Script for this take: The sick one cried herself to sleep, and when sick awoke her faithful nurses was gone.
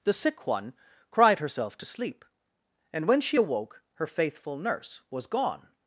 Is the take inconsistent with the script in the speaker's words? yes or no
yes